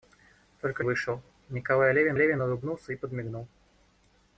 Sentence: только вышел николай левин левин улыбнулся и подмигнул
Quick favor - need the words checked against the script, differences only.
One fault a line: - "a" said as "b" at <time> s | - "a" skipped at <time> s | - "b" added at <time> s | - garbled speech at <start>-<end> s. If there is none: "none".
none